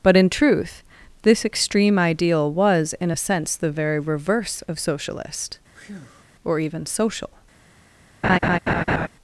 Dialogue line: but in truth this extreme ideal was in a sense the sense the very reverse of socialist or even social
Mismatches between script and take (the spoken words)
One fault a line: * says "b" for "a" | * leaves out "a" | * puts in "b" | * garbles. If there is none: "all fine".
* leaves out "sense the"